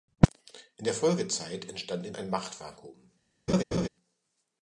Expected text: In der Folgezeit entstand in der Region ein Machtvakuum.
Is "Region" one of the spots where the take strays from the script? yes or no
yes